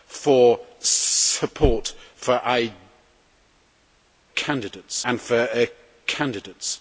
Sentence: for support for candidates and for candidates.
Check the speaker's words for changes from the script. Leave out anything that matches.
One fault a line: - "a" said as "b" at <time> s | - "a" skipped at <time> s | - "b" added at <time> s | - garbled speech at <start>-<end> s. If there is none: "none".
none